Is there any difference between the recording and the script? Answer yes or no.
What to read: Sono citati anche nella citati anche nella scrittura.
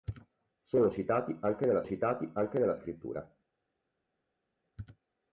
no